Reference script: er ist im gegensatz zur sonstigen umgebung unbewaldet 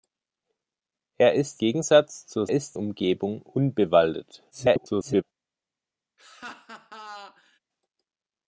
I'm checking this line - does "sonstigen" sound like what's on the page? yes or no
no